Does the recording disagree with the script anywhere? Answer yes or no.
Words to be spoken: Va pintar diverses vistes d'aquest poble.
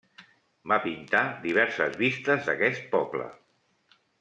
no